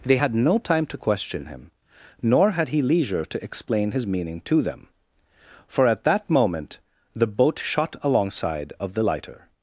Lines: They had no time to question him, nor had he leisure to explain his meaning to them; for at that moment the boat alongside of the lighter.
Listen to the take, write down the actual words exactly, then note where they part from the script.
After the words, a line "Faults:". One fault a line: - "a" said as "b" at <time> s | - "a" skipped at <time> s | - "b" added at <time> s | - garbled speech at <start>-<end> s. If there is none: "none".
They had no time to question him, nor had he leisure to explain his meaning to them; for at that moment the boat shot alongside of the lighter.
Faults:
- "shot" added at 7.6 s